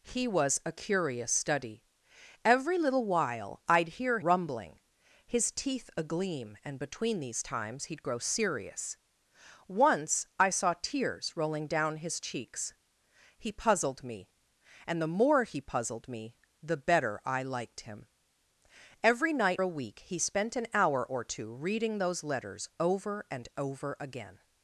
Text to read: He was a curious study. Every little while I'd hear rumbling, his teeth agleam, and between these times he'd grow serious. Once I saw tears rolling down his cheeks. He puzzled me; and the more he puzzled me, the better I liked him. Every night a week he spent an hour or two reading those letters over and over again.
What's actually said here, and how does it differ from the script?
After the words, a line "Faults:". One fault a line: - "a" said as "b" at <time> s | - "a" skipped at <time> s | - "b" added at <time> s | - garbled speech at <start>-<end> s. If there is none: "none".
He was a curious study. Every little while I'd hear rumbling, his teeth agleam, and between these times he'd grow serious. Once I saw tears rolling down his cheeks. He puzzled me; and the more he puzzled me, the better I liked him. Every night a week he spent an hour or two reading those letters over and over again.
Faults:
none